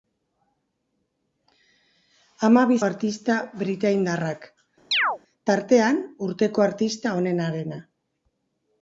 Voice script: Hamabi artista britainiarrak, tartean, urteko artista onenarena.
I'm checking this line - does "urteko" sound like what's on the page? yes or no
yes